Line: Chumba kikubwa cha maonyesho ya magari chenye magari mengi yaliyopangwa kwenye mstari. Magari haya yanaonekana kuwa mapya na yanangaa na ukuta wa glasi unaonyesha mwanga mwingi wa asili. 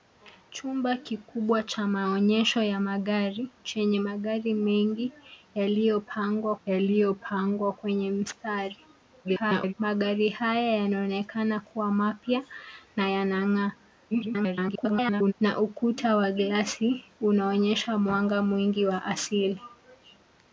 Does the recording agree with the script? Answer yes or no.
no